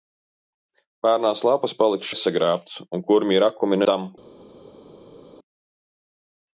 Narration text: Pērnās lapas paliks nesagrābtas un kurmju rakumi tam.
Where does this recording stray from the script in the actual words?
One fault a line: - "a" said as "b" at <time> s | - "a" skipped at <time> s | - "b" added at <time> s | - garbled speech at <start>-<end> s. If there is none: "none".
none